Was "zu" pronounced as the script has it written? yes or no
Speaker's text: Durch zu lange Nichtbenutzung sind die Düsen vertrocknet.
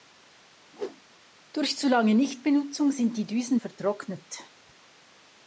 yes